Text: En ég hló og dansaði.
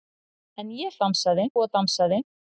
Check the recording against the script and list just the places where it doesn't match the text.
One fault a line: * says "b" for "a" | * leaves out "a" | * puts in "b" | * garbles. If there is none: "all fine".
* says "dansaði" for "hló"